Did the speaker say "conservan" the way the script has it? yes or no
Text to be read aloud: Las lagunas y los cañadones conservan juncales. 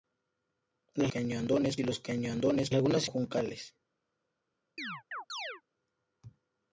no